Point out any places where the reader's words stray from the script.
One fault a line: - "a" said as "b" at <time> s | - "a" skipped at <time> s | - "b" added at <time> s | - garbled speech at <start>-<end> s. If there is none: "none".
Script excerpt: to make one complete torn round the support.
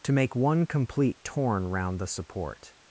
none